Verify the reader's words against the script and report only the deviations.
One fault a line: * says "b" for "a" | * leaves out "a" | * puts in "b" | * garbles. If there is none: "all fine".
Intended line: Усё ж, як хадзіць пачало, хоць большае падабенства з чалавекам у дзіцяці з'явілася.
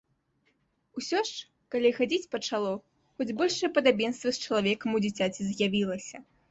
* says "калі" for "як"